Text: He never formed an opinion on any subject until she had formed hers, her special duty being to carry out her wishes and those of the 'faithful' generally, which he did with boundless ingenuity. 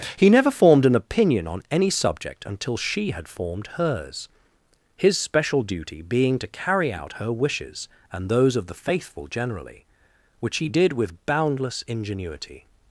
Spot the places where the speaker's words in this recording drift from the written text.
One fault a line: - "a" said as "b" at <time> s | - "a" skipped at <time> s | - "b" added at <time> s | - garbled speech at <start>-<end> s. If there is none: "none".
- "her" said as "his" at 5.0 s